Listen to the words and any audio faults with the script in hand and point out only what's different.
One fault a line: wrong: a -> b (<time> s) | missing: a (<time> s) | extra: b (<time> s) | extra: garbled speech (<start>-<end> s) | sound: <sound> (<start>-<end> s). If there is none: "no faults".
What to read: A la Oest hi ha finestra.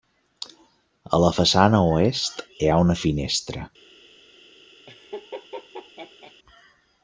extra: façana (1.4 s)
extra: una (2.9 s)
sound: laugh (4.9-6.3 s)